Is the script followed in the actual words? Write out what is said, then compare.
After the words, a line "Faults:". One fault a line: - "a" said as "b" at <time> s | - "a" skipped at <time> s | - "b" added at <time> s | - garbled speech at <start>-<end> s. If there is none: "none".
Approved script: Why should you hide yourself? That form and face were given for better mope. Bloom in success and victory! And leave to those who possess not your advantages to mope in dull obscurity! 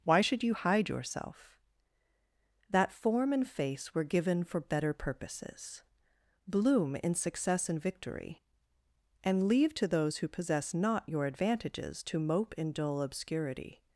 Why should you hide yourself? That form and face were given for better purposes. Bloom in success and victory! And leave to those who possess not your advantages to mope in dull obscurity!
Faults:
- "mope" said as "purposes" at 4.9 s